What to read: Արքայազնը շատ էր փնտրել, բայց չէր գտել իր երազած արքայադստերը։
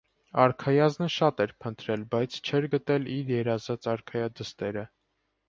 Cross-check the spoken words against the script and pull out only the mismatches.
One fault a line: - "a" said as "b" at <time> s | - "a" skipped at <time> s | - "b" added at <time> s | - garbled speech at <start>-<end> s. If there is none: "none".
none